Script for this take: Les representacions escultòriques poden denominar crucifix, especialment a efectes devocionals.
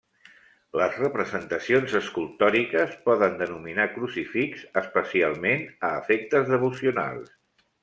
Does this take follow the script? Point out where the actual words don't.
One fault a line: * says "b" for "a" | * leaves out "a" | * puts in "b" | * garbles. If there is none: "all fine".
all fine